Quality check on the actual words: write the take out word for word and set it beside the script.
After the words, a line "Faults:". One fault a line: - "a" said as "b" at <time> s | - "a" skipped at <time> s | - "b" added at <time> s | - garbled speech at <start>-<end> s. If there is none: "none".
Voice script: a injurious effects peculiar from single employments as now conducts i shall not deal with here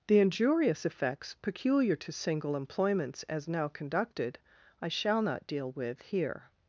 the injurious effects peculiar to single employments as now conducted i shall not deal with here
Faults:
- "a" said as "the" at 0.1 s
- "from" said as "to" at 1.9 s
- "conducts" said as "conducted" at 3.7 s